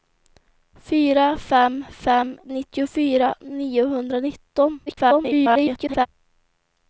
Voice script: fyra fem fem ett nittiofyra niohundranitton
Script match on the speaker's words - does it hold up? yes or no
no